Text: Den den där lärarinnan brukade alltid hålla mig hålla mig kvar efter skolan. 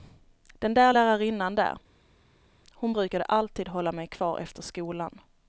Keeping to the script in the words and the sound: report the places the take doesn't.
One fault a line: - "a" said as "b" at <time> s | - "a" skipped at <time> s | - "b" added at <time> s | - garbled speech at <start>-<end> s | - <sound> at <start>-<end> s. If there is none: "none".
- "den" said as "där lärarinnan" at 0.7 s
- "lärarinnan" said as "hon" at 2.7 s
- "hålla mig" skipped at 4.1 s